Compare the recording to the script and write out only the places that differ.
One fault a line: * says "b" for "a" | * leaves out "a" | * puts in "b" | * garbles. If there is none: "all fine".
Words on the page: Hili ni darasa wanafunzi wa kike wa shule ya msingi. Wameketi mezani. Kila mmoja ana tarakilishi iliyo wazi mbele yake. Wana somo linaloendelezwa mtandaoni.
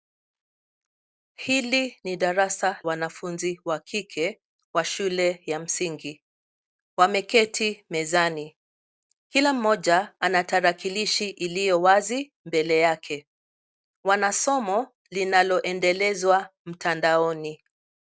all fine